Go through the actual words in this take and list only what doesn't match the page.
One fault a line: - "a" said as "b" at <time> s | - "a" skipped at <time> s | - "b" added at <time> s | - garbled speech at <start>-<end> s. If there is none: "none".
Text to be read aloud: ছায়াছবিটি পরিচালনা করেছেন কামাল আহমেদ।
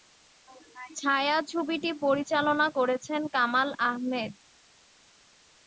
none